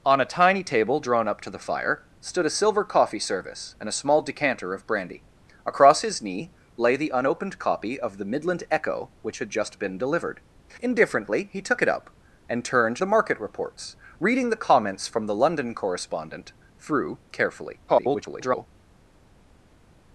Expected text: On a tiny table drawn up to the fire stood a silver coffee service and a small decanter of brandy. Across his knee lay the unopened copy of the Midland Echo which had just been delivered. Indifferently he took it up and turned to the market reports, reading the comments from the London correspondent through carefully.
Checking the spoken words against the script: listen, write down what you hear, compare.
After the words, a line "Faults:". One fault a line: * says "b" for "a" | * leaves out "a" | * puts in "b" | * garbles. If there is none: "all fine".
On a tiny table drawn up to the fire stood a silver coffee service and a small decanter of brandy. Across his knee lay the unopened copy of the Midland Echo which had just been delivered. Indifferently he took it up and turned the market reports, reading the comments from the London correspondent through carefully. [garbled]
Faults:
* leaves out "to"
* garbles